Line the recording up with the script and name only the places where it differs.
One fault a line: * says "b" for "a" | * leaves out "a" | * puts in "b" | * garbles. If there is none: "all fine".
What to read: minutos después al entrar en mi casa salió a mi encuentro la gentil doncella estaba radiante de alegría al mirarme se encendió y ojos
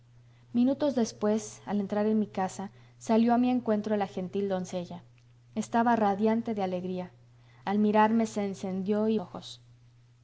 all fine